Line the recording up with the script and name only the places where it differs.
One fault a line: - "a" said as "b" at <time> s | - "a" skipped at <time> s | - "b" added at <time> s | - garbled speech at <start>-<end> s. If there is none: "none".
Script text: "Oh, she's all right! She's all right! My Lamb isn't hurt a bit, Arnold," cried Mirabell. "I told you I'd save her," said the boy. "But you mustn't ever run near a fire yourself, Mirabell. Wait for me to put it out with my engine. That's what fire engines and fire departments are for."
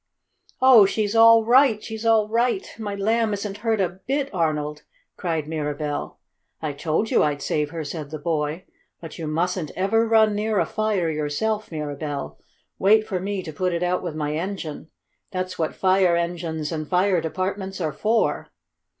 none